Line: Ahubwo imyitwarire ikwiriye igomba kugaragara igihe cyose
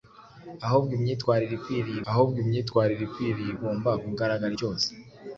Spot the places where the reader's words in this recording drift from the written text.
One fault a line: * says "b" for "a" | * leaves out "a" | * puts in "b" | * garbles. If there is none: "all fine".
* puts in "ahubwo imyitwarire ikwiriye"
* leaves out "igihe"